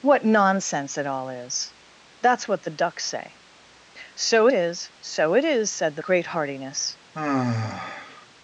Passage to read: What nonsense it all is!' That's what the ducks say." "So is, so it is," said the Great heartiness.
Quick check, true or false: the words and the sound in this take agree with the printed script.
false